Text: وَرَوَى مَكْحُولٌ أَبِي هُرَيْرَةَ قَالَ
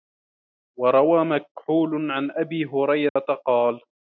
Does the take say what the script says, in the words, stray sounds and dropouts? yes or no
no